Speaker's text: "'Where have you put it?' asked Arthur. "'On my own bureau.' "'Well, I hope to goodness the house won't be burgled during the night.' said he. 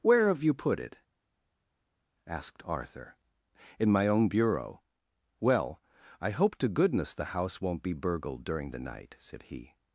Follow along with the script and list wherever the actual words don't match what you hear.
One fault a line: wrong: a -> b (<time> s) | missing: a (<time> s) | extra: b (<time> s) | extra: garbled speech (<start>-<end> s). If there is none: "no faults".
wrong: On -> In (3.8 s)